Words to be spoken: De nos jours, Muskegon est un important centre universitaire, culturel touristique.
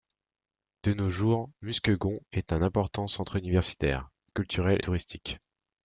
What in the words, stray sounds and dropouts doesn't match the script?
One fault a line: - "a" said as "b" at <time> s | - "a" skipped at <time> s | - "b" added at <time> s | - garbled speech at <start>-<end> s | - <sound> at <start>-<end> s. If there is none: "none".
none